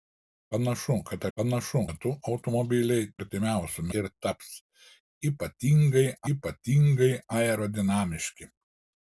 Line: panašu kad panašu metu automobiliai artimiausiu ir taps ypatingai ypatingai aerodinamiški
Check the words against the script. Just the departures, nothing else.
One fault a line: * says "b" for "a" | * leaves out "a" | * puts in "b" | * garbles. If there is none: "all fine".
all fine